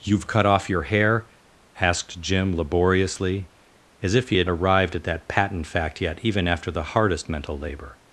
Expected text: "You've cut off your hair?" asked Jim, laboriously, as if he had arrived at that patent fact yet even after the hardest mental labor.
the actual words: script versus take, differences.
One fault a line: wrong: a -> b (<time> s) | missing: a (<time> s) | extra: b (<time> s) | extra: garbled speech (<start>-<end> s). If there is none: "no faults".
no faults